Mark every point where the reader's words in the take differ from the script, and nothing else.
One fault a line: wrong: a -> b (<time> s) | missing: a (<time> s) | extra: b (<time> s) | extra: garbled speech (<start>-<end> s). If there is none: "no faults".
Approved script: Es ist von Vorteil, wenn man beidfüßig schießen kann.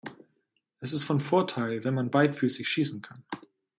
no faults